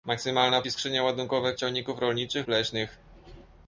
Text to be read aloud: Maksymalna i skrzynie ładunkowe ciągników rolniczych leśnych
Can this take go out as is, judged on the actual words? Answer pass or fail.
pass